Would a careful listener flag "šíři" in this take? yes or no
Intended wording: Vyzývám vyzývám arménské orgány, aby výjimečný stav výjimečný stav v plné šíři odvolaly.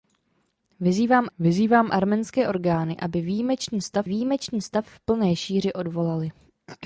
no